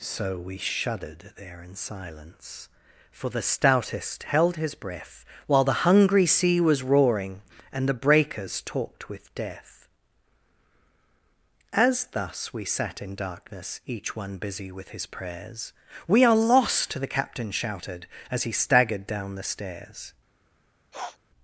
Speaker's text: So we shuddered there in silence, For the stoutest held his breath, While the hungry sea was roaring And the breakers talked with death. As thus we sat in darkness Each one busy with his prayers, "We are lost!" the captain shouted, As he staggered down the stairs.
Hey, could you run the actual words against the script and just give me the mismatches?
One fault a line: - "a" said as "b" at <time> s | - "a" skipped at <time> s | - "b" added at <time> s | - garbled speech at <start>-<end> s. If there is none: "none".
none